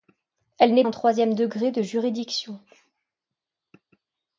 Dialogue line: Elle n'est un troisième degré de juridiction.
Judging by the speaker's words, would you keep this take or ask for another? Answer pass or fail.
pass